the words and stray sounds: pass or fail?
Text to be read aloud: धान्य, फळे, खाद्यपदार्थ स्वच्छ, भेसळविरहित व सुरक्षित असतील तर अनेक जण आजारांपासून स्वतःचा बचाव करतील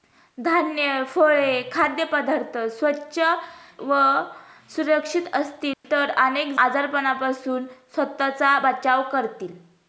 fail